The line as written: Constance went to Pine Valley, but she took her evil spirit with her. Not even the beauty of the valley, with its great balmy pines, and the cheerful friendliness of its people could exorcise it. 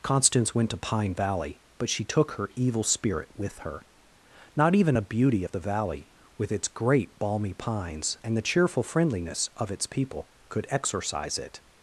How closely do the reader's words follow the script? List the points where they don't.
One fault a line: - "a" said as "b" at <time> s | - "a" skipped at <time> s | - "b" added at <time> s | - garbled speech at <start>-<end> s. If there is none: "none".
- "the" said as "a" at 5.0 s